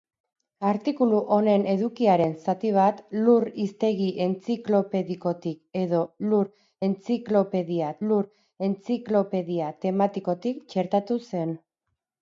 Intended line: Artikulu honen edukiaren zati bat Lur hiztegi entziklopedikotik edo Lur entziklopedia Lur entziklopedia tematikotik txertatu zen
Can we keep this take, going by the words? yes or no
yes